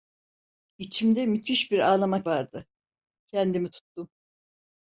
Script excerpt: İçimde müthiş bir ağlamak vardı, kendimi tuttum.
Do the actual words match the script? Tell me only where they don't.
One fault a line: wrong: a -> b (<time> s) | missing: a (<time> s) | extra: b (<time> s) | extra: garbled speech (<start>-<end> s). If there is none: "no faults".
no faults